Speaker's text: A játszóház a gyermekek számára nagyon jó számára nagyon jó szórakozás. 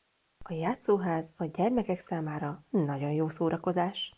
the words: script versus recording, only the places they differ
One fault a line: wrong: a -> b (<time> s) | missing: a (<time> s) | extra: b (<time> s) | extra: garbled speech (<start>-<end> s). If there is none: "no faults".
missing: számára nagyon jó (3.3 s)